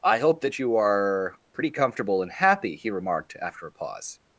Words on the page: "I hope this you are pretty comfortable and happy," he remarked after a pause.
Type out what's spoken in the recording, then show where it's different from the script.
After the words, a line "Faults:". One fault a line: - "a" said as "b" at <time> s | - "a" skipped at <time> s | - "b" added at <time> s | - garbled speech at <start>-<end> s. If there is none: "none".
"I hope that you are pretty comfortable and happy," he remarked after a pause.
Faults:
- "this" said as "that" at 0.4 s